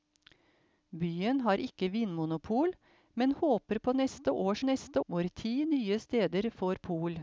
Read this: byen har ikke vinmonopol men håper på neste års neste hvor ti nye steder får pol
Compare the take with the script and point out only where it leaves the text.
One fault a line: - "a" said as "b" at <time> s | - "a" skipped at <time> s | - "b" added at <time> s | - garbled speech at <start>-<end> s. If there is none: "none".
none